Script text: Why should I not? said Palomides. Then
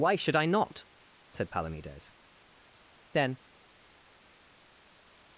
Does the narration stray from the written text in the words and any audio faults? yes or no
no